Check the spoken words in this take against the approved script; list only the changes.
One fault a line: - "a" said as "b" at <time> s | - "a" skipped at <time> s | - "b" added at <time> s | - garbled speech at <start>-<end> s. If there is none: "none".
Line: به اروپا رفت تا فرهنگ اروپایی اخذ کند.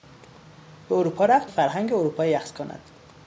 - "تا" skipped at 1.5 s